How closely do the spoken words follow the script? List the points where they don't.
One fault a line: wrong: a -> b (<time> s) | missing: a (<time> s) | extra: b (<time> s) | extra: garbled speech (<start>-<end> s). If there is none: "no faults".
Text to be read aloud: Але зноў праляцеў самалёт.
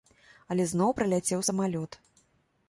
no faults